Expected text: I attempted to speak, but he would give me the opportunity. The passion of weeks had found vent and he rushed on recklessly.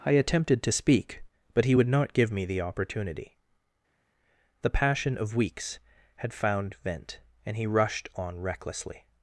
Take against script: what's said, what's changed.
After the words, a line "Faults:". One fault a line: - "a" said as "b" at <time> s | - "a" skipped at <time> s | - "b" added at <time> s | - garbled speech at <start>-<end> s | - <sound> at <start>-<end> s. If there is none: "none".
I attempted to speak, but he would not give me the opportunity. The passion of weeks had found vent and he rushed on recklessly.
Faults:
- "not" added at 1.9 s